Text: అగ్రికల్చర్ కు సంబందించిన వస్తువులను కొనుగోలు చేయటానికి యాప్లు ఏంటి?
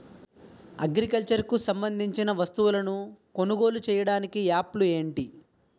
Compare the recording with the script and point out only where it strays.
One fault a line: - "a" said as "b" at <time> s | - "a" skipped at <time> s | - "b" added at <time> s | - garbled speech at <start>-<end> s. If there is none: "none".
none